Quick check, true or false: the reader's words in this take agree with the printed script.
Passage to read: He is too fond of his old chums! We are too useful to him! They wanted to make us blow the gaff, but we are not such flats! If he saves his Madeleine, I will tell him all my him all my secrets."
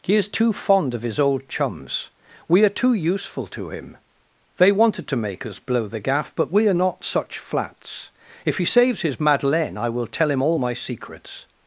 false